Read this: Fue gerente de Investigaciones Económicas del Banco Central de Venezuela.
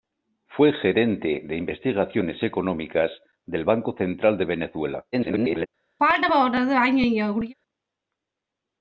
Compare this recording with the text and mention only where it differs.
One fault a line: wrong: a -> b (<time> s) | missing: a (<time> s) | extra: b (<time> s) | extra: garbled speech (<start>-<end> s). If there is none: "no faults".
extra: garbled speech (5.1-5.7 s)